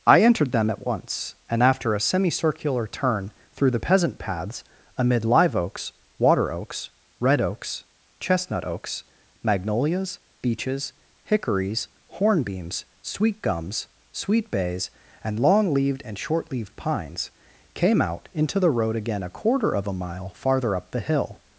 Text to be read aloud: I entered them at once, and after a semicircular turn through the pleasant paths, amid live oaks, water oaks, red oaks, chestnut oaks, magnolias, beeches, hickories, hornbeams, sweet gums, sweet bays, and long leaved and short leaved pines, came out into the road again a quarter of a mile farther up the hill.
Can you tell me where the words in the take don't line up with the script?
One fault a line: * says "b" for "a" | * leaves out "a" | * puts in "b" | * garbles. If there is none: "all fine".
* says "peasant" for "pleasant"